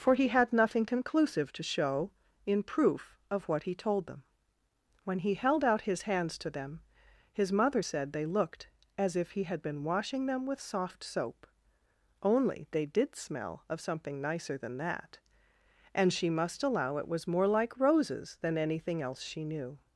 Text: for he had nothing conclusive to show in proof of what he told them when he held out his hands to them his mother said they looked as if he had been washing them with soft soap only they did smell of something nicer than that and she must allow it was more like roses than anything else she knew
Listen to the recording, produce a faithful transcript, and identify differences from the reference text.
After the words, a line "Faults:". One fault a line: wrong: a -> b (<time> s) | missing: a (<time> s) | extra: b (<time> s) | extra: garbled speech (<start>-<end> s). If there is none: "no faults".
for he had nothing conclusive to show in proof of what he told them when he held out his hands to them his mother said they looked as if he had been washing them with soft soap only they did smell of something nicer than that and she must allow it was more like roses than anything else she knew
Faults:
no faults